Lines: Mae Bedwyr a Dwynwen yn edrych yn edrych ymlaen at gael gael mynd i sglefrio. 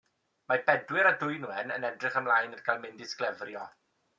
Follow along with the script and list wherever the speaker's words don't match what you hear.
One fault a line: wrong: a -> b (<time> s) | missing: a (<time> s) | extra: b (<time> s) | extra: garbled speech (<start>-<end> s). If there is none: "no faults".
missing: yn edrych (2.2 s)
missing: gael (2.8 s)